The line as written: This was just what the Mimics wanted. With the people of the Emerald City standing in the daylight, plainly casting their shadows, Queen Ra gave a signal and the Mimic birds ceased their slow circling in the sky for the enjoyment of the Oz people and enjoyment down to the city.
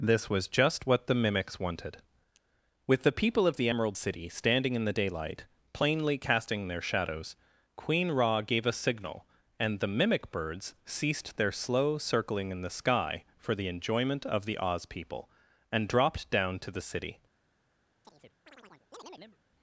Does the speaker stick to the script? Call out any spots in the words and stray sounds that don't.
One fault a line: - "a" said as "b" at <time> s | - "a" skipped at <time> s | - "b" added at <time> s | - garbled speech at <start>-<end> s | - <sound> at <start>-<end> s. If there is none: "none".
- "enjoyment" said as "dropped" at 15.9 s
- chirp at 18.0-19.4 s